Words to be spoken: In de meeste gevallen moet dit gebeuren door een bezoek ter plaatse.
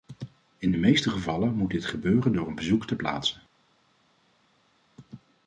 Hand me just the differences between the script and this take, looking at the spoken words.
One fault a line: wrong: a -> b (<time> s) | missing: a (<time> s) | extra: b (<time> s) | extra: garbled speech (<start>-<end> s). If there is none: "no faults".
no faults